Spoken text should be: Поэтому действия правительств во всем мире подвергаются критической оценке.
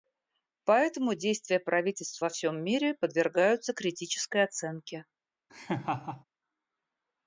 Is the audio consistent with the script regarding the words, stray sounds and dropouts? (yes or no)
no